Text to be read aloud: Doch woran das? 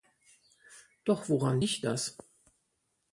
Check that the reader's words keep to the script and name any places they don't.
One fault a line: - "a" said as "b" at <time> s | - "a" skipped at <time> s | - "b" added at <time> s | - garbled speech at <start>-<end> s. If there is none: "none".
- "liegt" added at 1.6 s